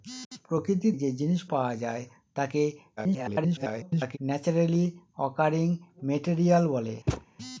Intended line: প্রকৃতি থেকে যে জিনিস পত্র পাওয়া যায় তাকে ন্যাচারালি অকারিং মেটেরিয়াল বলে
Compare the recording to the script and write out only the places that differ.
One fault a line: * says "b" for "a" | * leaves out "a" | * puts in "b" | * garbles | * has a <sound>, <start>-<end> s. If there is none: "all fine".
* leaves out "থেকে"
* leaves out "পত্র"
* garbles
* has a thud, 7.1-7.3 s